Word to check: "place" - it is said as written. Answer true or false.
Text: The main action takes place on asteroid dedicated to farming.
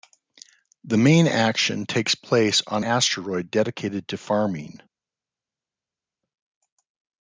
true